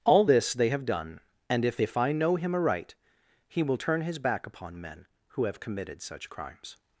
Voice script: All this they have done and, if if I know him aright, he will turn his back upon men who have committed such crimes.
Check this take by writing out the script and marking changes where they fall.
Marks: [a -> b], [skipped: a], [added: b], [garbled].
All this they have done and, if if I know him aright, he will turn his back upon men who have committed such crimes.